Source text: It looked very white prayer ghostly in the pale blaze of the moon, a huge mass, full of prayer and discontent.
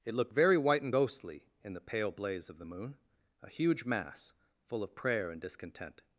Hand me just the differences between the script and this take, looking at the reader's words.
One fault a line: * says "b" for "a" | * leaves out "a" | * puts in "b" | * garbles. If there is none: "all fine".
* says "and" for "prayer"